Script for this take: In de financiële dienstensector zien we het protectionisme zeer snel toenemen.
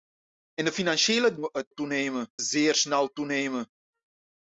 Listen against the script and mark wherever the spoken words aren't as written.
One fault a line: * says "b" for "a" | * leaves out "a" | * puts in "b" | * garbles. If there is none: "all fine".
* leaves out "dienstensector zien"
* says "toenemen" for "protectionisme"